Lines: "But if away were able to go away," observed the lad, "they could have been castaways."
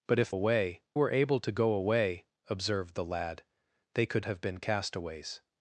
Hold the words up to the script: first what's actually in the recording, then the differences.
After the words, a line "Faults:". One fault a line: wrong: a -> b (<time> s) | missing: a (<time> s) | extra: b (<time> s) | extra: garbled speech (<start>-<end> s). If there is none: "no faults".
"But if away were able to go away," observed the lad, "they could have been castaways."
Faults:
no faults